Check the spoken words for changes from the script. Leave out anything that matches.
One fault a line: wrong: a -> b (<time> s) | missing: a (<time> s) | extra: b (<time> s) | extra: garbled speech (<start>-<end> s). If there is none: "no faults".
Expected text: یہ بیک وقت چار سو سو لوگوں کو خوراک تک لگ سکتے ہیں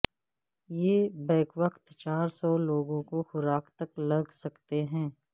missing: سو (2.5 s)